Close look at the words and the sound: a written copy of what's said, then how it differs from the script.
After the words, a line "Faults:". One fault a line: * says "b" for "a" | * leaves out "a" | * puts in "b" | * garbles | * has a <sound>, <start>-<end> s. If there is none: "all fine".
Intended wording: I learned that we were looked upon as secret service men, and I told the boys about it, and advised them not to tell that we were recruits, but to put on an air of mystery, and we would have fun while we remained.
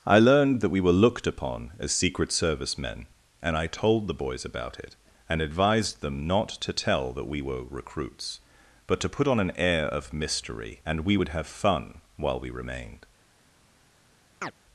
I learned that we were looked upon as secret service men, and I told the boys about it, and advised them not to tell that we were recruits, but to put on an air of mystery, and we would have fun while we remained.
Faults:
* has a chirp, 14.4-14.5 s